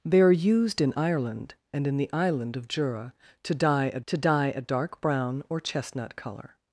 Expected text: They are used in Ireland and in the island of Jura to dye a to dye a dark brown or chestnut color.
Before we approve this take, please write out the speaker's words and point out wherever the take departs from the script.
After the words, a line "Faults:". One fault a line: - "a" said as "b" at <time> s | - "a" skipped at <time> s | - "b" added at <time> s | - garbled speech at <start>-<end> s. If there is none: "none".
They are used in Ireland and in the island of Jura to dye a to dye a dark brown or chestnut color.
Faults:
none